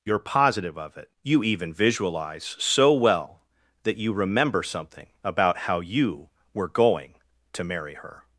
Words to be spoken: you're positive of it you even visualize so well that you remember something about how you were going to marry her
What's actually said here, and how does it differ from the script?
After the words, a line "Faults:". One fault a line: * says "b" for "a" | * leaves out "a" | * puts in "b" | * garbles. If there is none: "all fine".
you're positive of it you even visualize so well that you remember something about how you were going to marry her
Faults:
all fine